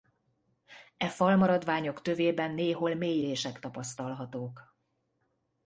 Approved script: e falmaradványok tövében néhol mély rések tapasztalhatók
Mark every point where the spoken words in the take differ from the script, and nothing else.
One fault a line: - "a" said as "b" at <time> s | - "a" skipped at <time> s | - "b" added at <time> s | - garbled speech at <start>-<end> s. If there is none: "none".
none